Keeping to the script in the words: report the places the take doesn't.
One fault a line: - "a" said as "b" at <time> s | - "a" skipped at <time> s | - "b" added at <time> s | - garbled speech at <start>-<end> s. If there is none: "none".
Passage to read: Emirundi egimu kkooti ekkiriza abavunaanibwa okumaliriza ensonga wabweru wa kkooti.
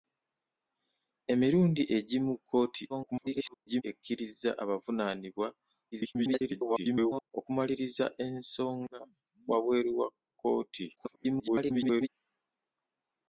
- garbled speech at 2.9-3.8 s
- garbled speech at 5.9-7.3 s
- garbled speech at 10.9-12.1 s